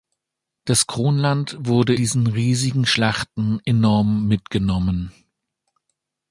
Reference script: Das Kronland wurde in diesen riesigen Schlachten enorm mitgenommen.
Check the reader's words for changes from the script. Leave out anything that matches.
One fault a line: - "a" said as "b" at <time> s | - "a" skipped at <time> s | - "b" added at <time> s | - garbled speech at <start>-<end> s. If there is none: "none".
- "in" skipped at 1.9 s